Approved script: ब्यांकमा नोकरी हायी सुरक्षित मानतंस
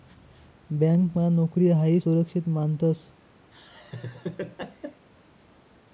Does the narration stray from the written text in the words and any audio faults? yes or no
yes